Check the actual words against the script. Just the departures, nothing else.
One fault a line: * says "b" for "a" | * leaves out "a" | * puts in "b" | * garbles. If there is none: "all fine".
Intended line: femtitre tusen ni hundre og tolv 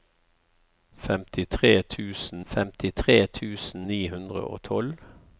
* puts in "femtitre tusen"